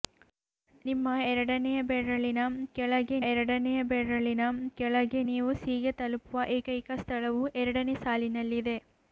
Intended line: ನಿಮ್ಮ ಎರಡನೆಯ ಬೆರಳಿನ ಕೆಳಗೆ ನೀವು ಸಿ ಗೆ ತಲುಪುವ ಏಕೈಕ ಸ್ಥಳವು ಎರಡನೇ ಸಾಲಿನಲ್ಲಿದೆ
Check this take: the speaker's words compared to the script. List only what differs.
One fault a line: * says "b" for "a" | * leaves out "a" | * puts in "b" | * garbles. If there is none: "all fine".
* puts in "ಎರಡನೆಯ ಬೆರಳಿನ ಕೆಳಗೆ"